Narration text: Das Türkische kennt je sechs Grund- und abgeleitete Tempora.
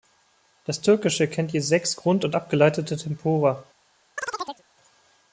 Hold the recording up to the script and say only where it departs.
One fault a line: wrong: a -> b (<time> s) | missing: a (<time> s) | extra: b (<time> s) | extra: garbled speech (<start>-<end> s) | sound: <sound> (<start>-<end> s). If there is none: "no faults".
sound: chirp (4.2-4.6 s)